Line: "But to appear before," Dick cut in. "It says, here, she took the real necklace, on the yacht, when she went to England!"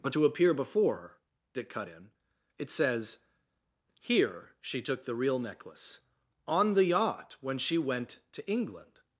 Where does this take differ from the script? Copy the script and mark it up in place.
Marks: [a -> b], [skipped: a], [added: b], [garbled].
"But to appear before," Dick cut in. "It says, here, she took the real necklace, on the yacht, when she went to England!"